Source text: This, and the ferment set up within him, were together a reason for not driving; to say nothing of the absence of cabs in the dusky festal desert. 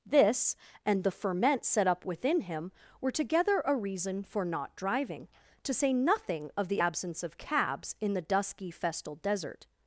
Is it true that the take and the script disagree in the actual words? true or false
false